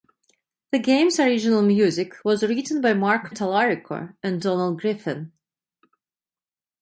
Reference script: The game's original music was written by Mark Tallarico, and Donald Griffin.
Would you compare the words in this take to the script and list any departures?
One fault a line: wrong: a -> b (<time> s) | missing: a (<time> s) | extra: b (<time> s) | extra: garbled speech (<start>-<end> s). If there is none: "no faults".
no faults